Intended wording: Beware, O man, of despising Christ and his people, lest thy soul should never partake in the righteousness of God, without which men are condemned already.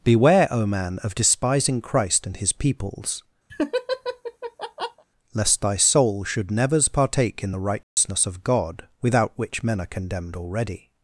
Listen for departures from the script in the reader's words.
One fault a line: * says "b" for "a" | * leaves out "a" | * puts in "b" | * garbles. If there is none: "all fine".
* says "peoples" for "people"
* says "nevers" for "never"